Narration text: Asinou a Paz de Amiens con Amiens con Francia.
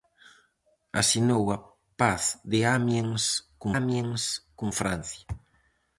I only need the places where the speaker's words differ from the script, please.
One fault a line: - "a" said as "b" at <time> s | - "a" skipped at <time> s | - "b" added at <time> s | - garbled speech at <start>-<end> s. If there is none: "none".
none